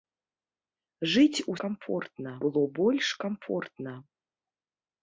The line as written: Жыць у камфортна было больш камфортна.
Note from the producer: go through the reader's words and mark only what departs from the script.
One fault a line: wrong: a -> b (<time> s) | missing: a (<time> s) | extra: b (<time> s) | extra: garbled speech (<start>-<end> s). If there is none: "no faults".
no faults